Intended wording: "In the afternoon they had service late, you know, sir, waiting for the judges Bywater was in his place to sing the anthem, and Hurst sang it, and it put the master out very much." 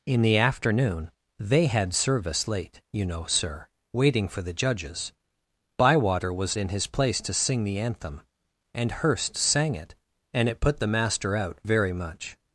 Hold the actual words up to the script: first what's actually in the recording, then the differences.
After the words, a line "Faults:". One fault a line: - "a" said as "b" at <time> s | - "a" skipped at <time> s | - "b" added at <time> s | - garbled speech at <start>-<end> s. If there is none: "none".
"In the afternoon they had service late, you know, sir, waiting for the judges Bywater was in his place to sing the anthem, and Hurst sang it, and it put the master out very much."
Faults:
none